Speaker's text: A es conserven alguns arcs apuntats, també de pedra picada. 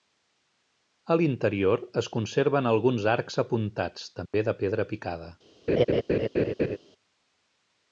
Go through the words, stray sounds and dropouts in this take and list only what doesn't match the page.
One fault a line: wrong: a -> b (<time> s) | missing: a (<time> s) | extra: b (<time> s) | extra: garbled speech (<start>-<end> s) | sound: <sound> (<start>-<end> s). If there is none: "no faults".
extra: l'interior (1.2 s)
sound: dropout (4.3-4.3 s)
sound: laugh (5.7-6.8 s)